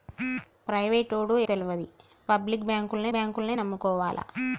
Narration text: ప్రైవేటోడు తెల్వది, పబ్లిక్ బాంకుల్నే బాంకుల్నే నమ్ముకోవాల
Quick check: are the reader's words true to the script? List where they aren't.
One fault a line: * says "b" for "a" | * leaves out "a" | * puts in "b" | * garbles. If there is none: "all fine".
all fine